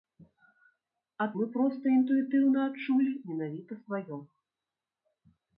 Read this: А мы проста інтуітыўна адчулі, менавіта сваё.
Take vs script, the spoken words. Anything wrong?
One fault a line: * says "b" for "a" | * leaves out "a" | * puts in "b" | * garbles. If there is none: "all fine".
all fine